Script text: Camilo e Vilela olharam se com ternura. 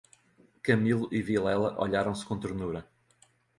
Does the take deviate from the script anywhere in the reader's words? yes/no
no